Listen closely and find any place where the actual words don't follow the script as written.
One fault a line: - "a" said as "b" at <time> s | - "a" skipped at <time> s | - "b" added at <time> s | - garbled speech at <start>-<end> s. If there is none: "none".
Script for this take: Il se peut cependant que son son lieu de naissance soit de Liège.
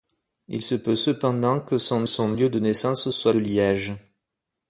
none